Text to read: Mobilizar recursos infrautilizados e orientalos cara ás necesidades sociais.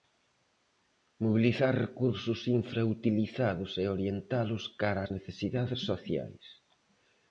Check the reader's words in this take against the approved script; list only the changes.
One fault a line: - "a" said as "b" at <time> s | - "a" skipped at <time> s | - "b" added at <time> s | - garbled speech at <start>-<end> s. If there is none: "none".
none